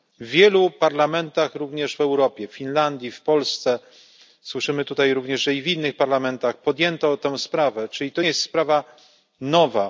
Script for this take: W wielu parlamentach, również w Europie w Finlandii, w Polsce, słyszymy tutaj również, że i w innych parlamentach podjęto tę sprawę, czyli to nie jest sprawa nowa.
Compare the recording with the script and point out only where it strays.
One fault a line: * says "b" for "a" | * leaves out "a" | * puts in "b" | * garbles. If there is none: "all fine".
* leaves out "nie"